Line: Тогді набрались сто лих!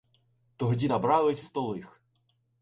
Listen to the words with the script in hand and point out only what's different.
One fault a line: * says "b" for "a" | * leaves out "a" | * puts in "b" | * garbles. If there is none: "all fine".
all fine